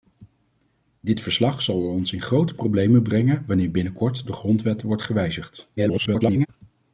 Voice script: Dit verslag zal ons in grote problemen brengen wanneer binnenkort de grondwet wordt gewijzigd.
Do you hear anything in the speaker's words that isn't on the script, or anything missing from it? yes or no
yes